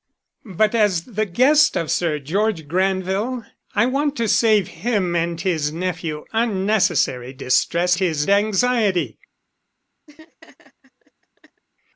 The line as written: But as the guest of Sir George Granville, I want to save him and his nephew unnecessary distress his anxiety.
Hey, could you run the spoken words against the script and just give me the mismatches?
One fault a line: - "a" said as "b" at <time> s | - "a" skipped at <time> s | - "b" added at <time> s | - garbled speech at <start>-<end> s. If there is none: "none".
none